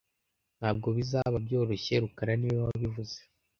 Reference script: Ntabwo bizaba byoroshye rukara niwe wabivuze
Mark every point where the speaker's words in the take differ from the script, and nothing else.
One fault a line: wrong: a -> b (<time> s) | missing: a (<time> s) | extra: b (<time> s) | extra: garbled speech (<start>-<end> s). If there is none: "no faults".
no faults